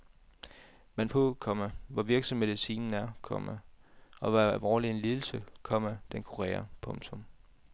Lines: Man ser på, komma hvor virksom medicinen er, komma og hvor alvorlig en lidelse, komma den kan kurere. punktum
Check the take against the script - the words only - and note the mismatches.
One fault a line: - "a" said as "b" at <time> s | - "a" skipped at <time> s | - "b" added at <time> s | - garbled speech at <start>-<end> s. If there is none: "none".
- "ser" skipped at 1.1 s
- "kan" skipped at 6.2 s